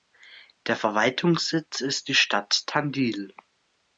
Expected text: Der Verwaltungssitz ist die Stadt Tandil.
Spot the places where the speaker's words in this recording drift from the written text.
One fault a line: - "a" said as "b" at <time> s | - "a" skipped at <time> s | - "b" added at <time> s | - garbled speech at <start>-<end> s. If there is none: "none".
none